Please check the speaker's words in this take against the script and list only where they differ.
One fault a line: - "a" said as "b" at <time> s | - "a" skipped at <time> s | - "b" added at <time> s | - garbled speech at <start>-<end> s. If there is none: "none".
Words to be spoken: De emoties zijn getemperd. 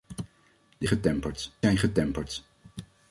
- "emoties" said as "getemperd" at 0.9 s